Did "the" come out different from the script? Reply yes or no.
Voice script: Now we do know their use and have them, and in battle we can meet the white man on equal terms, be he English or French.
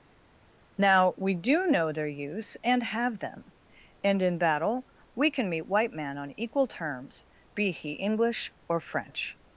yes